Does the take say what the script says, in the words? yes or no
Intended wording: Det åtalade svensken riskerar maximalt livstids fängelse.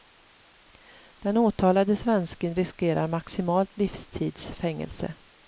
no